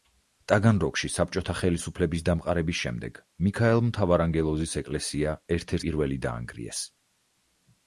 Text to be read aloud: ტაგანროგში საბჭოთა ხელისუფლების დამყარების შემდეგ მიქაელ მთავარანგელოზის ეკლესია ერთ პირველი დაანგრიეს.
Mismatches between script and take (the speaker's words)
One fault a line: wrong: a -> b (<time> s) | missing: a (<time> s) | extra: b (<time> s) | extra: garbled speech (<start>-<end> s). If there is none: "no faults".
no faults